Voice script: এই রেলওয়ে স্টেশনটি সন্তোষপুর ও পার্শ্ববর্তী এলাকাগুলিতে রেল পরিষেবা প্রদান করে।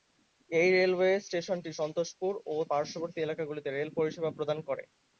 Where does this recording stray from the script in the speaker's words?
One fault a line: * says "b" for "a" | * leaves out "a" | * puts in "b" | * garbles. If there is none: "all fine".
all fine